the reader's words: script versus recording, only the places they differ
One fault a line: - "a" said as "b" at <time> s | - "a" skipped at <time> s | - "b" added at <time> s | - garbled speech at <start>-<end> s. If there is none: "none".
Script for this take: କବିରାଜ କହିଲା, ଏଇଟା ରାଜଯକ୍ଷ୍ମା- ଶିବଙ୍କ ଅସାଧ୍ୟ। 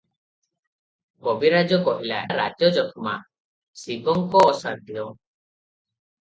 - "ଏଇଟା" skipped at 2.2 s